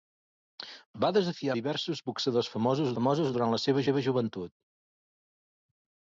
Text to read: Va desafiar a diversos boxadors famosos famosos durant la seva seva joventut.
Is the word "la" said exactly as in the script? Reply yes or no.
yes